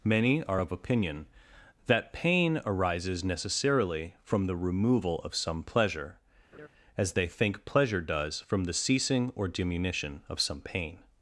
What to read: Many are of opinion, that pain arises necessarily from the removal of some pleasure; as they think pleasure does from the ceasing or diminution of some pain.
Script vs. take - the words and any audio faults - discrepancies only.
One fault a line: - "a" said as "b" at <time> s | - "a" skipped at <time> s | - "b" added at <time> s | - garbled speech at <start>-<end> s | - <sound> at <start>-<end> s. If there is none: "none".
- laugh at 6.5-6.7 s